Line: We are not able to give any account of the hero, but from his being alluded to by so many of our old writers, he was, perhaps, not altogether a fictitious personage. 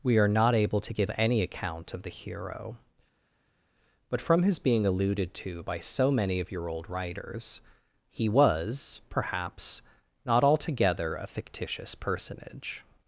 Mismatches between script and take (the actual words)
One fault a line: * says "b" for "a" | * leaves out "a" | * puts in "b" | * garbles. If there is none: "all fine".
* says "your" for "our"